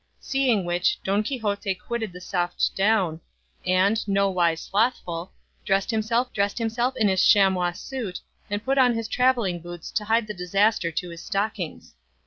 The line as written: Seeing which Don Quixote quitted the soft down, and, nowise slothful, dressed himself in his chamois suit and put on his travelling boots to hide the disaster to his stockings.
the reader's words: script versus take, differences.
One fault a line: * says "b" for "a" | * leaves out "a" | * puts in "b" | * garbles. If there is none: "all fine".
* puts in "dressed himself"